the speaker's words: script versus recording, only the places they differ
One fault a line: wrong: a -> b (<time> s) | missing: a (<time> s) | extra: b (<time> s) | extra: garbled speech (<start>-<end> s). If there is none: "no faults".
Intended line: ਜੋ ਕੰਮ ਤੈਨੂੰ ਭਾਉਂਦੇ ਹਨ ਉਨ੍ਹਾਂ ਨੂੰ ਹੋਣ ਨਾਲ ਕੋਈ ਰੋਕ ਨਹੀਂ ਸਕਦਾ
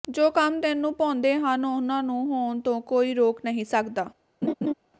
wrong: ਨਾਲ -> ਤੋਂ (2.6 s)